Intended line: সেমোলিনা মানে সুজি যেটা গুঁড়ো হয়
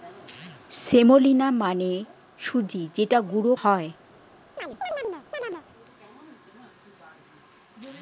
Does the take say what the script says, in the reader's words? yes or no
yes